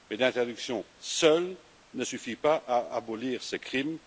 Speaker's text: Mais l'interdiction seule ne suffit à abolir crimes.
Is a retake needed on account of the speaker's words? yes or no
yes